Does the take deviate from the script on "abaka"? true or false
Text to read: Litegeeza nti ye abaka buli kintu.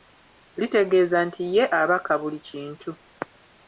false